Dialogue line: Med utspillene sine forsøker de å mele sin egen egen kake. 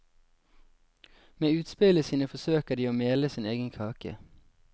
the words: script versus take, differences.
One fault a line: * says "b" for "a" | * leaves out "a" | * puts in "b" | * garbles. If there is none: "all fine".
* leaves out "egen"